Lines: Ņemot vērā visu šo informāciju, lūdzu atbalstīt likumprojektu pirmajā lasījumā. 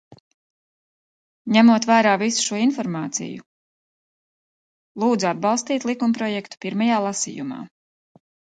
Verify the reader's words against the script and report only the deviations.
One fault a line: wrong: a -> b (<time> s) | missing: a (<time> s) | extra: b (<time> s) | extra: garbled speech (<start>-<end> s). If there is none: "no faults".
no faults